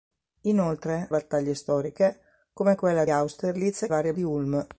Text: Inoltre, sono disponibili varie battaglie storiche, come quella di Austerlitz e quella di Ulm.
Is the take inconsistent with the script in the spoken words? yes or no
yes